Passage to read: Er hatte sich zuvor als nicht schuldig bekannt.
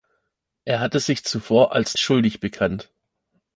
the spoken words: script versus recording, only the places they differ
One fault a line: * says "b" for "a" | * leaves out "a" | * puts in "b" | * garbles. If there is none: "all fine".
* leaves out "nicht"